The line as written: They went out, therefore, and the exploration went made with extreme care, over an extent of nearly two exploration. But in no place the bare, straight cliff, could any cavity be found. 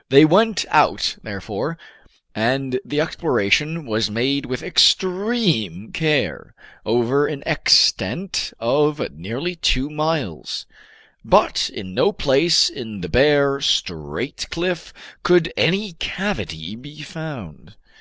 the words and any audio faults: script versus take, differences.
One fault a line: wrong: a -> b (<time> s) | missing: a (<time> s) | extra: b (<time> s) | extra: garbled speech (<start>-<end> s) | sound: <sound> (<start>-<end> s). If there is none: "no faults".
wrong: went -> was (3.9 s)
wrong: exploration -> miles (9.9 s)
extra: in (12.7 s)